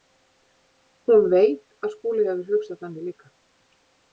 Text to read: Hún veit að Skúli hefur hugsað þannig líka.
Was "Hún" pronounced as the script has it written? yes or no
yes